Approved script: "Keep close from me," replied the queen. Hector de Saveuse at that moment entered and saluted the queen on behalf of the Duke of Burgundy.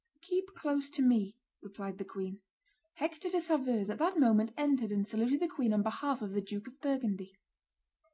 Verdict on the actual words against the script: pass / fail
fail